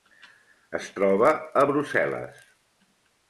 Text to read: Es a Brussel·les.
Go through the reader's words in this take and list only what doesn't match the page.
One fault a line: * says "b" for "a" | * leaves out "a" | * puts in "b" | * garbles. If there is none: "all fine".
* puts in "troba"